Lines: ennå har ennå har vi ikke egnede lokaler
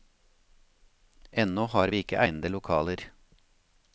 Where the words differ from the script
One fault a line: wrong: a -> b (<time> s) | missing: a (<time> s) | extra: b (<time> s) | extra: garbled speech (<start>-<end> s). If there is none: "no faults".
missing: ennå har (1.9 s)